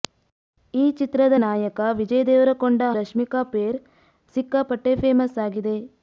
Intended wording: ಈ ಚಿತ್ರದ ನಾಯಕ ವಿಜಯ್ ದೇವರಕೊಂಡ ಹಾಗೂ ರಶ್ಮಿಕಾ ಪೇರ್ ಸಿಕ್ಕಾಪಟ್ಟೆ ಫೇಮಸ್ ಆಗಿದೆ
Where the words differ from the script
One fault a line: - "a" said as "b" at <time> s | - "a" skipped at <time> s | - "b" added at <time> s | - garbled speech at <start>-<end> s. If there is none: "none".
- "ಹಾಗೂ" skipped at 2.8 s